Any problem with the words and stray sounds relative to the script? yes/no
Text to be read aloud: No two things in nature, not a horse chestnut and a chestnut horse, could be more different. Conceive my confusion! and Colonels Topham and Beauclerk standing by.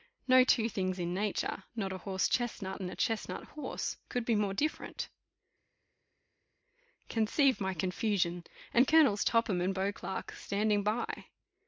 no